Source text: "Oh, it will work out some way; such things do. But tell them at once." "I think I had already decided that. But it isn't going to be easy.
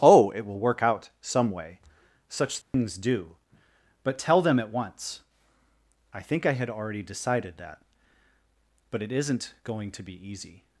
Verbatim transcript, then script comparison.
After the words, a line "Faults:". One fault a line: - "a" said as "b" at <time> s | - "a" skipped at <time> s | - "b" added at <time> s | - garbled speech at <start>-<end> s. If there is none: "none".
"Oh, it will work out some way; such things do. But tell them at once." "I think I had already decided that. But it isn't going to be easy.
Faults:
none